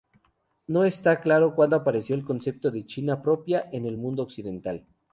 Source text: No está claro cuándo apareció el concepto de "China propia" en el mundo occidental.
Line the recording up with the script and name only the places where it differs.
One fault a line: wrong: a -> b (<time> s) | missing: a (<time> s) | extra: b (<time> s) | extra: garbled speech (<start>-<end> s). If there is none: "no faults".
no faults